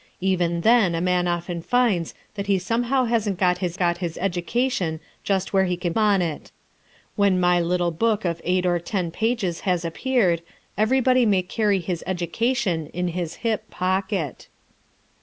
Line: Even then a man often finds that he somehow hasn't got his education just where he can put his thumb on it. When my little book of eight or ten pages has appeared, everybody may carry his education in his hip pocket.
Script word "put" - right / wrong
wrong